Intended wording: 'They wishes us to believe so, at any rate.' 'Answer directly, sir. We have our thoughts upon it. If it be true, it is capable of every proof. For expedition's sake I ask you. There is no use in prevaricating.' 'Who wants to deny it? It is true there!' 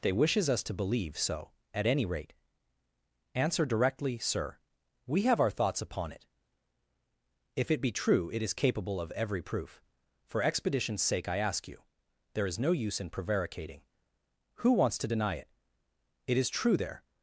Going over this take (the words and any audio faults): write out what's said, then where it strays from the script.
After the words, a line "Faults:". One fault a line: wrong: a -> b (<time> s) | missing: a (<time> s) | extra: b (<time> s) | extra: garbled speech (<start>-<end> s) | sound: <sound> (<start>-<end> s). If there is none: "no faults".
'They wishes us to believe so, at any rate.' 'Answer directly, sir. We have our thoughts upon it. If it be true, it is capable of every proof. For expedition's sake I ask you. There is no use in prevaricating.' 'Who wants to deny it? It is true there!'
Faults:
no faults